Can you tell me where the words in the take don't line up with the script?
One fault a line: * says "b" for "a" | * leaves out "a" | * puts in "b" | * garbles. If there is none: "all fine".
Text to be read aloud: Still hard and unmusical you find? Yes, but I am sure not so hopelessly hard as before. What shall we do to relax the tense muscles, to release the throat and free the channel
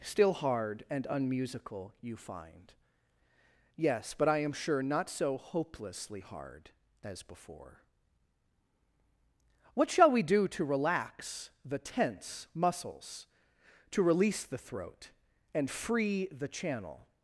all fine